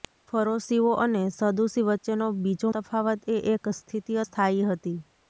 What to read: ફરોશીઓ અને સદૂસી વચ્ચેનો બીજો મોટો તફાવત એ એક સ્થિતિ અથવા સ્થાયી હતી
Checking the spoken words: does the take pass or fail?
fail